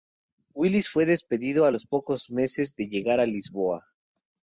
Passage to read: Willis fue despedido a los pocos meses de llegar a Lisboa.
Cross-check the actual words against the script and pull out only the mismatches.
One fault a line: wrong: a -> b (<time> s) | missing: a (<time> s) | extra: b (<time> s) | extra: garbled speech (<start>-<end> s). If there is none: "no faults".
no faults